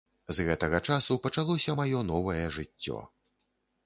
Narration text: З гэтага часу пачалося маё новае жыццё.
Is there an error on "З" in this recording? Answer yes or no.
no